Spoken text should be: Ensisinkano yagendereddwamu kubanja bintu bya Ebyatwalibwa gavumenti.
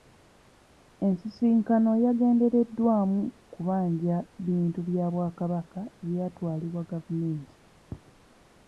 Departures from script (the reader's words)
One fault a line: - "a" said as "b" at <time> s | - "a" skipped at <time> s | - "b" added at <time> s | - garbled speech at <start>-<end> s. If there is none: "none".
- "Bwakabaka" added at 5.1 s